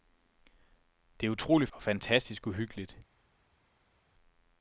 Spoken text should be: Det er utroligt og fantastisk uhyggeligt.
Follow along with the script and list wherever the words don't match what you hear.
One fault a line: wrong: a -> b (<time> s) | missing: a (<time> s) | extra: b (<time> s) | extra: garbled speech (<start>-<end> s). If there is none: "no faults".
no faults